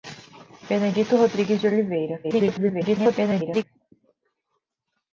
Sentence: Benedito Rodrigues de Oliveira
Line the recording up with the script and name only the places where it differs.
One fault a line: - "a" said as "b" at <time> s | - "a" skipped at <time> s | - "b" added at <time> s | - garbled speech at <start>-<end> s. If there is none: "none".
- garbled speech at 2.2-3.6 s